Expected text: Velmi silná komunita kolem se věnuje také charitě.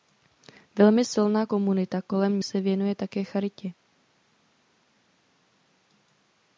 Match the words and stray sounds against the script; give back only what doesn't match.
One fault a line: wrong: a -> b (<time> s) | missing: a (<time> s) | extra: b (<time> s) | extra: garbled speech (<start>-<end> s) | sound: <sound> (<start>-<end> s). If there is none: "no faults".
no faults